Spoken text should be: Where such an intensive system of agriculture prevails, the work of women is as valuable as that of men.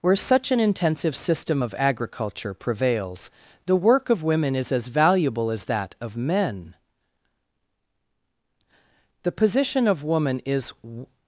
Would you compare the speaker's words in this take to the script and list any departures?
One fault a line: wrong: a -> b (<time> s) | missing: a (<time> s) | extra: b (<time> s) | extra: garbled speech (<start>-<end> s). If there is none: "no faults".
extra: The position of woman is (9.2 s)